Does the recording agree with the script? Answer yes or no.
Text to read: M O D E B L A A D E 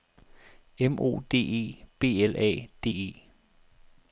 no